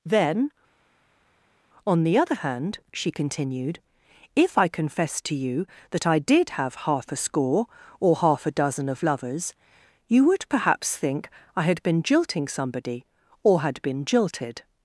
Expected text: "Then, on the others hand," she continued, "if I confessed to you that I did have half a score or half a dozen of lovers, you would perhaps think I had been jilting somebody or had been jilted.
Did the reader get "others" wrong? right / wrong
wrong